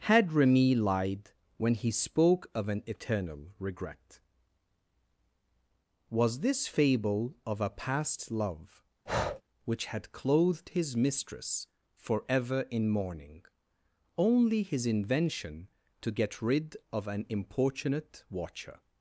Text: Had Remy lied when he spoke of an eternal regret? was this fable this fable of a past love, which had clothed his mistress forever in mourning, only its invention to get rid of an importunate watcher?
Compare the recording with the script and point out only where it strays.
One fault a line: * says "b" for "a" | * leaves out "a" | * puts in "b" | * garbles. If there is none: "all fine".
* leaves out "this fable"
* says "his" for "its"